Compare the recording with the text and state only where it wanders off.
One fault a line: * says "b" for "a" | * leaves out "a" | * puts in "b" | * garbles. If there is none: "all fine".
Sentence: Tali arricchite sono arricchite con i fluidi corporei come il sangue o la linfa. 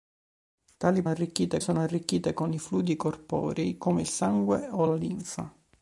all fine